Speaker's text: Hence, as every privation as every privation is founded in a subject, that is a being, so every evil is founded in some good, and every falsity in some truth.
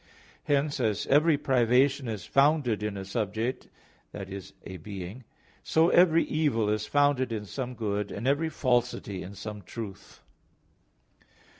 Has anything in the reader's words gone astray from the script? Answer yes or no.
yes